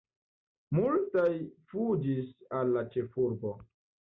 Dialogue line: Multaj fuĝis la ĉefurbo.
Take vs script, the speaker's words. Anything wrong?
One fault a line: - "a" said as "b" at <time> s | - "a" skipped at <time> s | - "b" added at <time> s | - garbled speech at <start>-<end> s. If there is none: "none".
- "al" added at 2.6 s